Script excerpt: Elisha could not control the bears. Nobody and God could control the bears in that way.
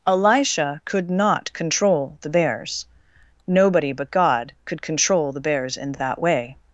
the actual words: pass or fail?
fail